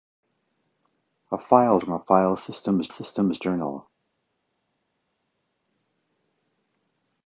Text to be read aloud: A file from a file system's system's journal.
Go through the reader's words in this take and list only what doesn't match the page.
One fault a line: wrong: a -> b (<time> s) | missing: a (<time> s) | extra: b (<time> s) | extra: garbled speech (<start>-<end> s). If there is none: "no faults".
no faults